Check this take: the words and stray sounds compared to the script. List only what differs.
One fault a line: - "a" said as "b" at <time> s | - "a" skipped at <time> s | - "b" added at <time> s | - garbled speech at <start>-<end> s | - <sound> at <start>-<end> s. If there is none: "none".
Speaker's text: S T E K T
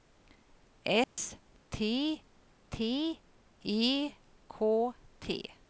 - dropout at 1.0-1.2 s
- "T" added at 2.7 s